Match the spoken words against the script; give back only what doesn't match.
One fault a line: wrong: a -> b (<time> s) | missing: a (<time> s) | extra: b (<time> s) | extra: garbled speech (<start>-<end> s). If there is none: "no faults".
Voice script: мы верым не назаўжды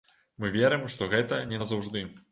extra: што гэта (0.9 s)